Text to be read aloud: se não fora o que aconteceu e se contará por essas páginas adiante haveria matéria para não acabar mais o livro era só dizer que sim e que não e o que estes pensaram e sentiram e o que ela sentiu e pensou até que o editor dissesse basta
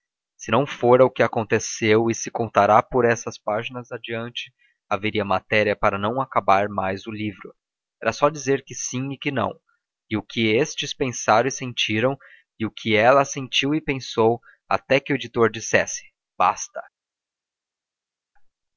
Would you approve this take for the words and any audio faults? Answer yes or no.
yes